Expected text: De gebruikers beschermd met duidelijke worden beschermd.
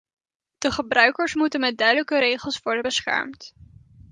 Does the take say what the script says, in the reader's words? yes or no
no